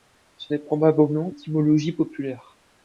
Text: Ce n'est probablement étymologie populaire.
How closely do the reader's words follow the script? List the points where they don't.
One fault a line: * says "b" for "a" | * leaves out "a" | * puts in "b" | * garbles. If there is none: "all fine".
all fine